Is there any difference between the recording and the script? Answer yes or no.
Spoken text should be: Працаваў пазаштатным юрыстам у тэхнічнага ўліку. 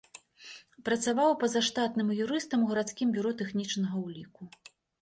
yes